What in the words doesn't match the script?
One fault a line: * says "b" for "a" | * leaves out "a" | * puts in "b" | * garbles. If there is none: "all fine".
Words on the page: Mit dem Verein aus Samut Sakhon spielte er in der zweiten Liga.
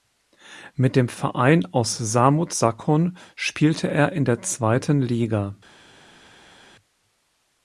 all fine